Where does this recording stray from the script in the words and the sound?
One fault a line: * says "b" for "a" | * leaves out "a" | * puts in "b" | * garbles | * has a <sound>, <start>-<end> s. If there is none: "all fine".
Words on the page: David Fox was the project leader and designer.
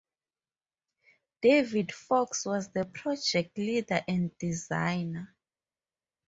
all fine